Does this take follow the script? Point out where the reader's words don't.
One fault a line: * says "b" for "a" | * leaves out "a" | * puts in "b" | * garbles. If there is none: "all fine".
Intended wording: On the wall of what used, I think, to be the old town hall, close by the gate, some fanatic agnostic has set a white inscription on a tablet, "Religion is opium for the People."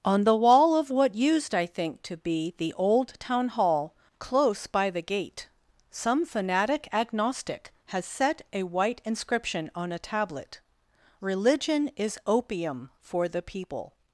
all fine